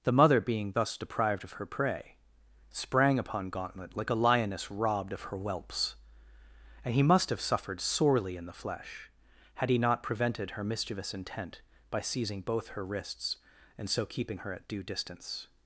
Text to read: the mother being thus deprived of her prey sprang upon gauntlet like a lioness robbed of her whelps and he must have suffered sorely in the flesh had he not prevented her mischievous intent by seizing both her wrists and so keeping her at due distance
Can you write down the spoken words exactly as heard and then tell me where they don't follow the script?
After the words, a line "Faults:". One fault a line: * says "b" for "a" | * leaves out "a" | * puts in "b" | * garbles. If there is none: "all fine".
the mother being thus deprived of her prey sprang upon gauntlet like a lioness robbed of her whelps and he must have suffered sorely in the flesh had he not prevented her mischievous intent by seizing both her wrists and so keeping her at due distance
Faults:
all fine